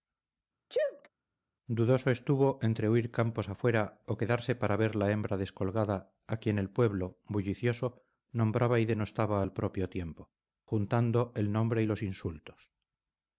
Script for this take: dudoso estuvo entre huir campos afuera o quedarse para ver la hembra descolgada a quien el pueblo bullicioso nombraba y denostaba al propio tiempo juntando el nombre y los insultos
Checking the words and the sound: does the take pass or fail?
fail